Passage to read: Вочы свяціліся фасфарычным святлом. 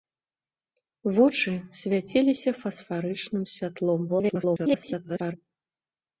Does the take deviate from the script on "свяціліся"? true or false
false